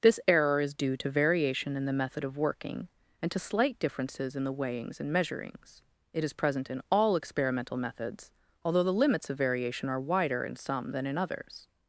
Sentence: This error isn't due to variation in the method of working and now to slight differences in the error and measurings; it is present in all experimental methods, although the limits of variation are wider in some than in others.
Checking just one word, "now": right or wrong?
wrong